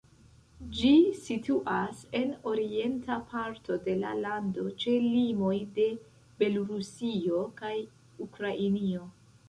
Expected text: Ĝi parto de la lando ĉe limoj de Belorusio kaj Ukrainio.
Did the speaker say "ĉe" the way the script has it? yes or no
yes